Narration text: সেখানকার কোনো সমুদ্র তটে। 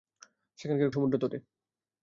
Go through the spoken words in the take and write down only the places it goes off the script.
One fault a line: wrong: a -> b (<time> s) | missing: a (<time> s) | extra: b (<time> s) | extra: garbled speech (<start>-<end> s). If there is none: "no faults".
missing: কোনো (0.9 s)